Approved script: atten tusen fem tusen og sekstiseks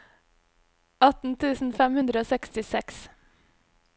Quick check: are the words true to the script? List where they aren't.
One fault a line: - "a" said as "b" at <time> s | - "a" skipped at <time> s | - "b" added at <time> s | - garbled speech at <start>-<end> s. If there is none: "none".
- "tusen" said as "hundre" at 2.0 s